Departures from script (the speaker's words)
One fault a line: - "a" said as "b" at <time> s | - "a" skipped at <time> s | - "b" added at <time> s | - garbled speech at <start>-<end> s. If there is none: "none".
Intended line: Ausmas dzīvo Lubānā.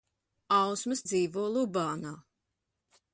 none